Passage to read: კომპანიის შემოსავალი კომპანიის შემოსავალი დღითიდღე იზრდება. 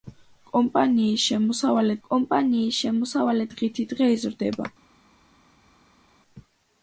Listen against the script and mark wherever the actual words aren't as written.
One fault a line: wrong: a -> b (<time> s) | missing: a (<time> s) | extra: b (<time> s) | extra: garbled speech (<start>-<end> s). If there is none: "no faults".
no faults